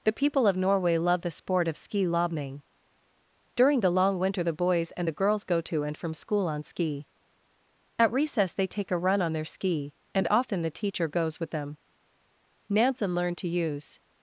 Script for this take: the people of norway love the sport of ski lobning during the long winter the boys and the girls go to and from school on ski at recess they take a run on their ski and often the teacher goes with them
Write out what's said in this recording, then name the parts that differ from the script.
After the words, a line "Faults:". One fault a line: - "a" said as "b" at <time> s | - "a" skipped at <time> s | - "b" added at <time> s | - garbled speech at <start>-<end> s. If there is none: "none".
the people of norway love the sport of ski lobning during the long winter the boys and the girls go to and from school on ski at recess they take a run on their ski and often the teacher goes with them nansen learned to use
Faults:
- "nansen learned to use" added at 12.7 s